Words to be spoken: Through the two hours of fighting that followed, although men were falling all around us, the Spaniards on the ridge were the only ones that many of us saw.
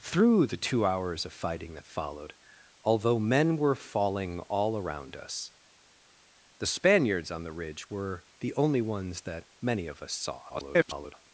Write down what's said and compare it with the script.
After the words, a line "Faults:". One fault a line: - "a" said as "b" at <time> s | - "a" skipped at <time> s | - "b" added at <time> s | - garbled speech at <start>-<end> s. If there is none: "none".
Through the two hours of fighting that followed, although men were falling all around us, the Spaniards on the ridge were the only ones that many of us saw. [garbled]
Faults:
- garbled speech at 10.5-11.1 s